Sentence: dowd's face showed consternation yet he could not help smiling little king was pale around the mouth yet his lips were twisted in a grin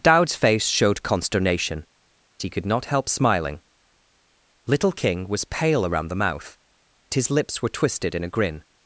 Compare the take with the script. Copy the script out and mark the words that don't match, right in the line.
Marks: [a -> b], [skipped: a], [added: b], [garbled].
dowd's face showed consternation [skipped: yet] he could not help smiling little king was pale around the mouth [skipped: yet] his lips were twisted in a grin